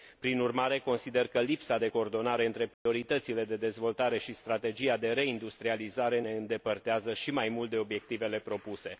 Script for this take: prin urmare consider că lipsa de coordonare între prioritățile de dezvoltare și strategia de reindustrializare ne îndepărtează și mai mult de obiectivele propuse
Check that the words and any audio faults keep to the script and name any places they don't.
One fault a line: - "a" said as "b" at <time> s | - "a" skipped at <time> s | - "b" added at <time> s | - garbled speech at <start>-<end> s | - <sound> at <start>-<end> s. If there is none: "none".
- dropout at 2.7-2.9 s